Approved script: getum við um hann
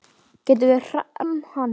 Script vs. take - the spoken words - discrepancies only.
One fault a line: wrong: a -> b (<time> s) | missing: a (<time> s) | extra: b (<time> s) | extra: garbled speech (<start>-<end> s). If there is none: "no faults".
no faults